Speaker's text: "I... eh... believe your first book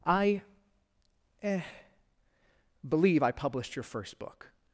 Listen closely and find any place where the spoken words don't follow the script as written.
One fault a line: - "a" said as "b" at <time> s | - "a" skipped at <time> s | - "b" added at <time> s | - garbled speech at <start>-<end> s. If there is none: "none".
- "I published" added at 3.2 s